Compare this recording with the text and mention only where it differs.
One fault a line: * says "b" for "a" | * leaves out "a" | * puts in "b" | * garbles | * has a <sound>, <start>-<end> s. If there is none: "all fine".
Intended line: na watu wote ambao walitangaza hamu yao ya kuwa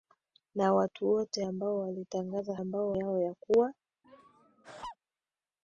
* says "ambao" for "hamu"
* has a laugh, 4.0-5.0 s